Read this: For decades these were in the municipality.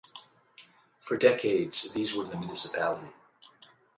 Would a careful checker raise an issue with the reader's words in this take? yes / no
no